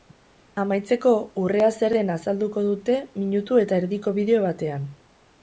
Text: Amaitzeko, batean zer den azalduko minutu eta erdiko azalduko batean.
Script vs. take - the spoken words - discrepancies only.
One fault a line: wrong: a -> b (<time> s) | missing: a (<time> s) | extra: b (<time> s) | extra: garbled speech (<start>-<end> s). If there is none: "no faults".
wrong: batean -> urrea (1.4 s)
extra: dute (2.7 s)
wrong: azalduko -> bideo (4.2 s)